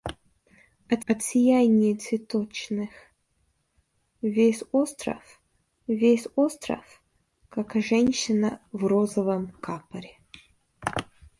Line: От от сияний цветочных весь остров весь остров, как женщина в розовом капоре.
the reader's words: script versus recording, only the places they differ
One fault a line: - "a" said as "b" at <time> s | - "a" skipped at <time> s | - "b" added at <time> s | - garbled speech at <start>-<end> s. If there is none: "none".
none